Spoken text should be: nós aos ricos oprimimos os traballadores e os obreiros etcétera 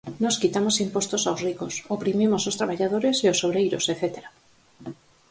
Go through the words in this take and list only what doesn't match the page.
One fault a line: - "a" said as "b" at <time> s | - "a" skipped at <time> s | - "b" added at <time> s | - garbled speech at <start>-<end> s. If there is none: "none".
- "quitamos impostos" added at 0.4 s